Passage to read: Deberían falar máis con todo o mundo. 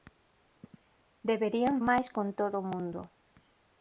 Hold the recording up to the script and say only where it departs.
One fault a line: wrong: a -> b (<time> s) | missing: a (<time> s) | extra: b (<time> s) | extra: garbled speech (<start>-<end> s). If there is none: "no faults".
missing: falar (1.8 s)